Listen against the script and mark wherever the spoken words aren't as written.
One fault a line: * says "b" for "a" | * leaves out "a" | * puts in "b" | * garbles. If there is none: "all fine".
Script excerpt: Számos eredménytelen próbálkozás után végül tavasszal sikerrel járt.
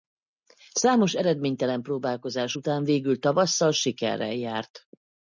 all fine